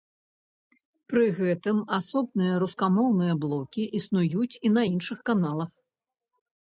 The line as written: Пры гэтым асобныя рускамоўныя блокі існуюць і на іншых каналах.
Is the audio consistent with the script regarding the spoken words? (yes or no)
yes